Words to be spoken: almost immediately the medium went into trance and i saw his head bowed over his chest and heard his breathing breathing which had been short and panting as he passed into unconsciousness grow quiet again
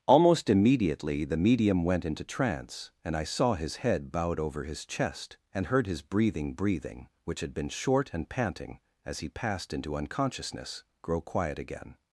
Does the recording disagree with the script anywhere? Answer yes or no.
no